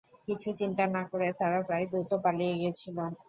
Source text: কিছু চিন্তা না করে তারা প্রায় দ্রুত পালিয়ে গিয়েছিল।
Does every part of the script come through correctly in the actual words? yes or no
yes